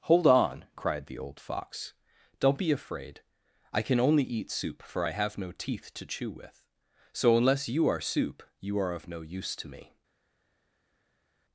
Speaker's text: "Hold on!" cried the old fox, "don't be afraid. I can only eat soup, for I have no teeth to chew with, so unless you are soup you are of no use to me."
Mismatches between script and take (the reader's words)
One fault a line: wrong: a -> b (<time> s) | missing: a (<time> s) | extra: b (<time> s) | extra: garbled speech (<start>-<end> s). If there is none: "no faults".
no faults